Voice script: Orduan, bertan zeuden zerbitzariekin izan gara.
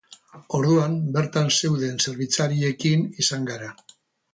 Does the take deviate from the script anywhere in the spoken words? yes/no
no